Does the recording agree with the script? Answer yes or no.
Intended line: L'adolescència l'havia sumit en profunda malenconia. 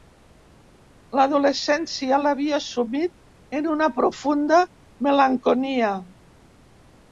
no